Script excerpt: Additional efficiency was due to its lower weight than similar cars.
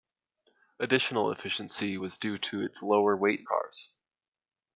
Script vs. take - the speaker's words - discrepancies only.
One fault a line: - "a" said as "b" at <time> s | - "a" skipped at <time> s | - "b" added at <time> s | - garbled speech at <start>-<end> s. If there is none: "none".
- "than similar" skipped at 3.5 s